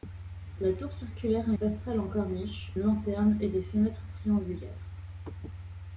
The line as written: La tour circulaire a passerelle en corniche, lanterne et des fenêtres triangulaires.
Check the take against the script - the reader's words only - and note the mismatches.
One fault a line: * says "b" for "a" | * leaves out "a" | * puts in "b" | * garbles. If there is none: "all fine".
all fine